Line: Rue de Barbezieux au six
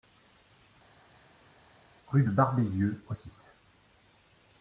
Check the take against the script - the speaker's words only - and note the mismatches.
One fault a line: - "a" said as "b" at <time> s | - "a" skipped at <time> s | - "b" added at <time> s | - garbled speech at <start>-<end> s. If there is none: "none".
none